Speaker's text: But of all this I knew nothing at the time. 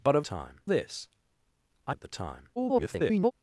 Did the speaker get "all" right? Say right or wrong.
wrong